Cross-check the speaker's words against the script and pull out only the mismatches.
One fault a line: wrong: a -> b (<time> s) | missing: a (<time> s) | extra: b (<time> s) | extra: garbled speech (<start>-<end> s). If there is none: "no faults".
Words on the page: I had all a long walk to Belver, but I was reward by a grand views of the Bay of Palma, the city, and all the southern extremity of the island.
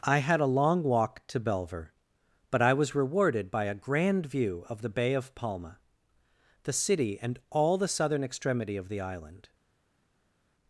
missing: all (0.4 s)
wrong: reward -> rewarded (3.0 s)
wrong: views -> view (4.2 s)